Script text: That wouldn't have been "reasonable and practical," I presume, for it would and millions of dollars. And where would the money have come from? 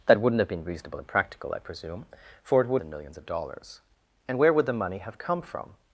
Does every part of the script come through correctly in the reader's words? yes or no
yes